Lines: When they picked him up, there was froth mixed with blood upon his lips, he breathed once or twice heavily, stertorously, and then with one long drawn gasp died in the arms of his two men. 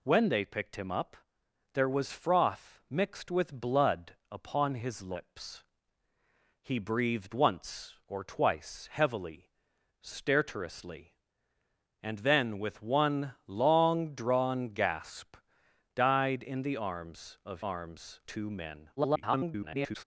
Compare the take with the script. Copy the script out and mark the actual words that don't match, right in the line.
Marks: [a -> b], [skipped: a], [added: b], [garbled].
When they picked him up, there was froth mixed with blood upon his lips, he breathed once or twice heavily, stertorously, and then with one long drawn gasp died in the arms of [his -> arms] two men. [garbled]